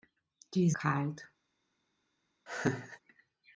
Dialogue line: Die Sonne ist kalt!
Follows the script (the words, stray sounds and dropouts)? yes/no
no